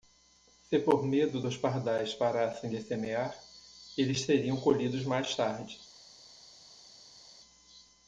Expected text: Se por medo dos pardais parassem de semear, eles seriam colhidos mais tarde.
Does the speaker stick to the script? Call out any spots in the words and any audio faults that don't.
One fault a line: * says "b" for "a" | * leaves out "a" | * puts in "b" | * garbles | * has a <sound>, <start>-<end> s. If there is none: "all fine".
all fine